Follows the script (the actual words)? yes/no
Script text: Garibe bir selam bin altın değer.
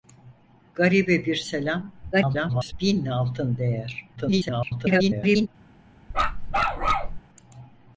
no